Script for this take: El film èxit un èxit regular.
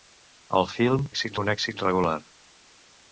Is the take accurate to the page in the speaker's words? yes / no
yes